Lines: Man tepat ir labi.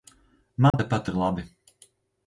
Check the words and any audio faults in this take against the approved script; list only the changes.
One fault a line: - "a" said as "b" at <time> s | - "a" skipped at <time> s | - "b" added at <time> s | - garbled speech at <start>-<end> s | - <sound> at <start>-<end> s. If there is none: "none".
- dropout at 0.7-0.7 s